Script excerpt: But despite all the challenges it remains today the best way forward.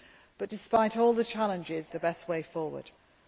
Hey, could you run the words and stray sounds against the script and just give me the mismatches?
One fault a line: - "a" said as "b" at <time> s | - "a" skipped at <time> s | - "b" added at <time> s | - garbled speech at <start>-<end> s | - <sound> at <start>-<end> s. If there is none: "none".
- "it remains today" skipped at 1.9 s